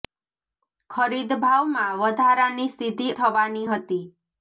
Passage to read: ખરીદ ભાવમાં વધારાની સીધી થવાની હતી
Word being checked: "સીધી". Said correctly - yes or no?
yes